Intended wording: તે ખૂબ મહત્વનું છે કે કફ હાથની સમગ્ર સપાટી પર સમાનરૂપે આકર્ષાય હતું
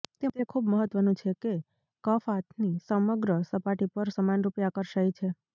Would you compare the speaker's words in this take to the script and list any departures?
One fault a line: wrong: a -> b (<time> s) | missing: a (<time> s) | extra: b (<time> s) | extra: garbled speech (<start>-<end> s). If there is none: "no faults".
wrong: હતું -> છે (5.1 s)